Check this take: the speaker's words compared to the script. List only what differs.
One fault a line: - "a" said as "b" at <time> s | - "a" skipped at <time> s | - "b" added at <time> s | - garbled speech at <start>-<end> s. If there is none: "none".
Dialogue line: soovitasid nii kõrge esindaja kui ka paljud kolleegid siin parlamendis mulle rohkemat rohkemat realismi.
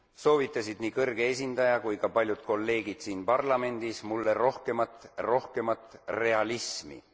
none